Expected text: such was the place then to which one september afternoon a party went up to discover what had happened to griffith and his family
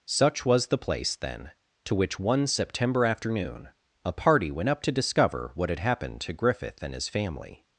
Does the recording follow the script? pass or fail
pass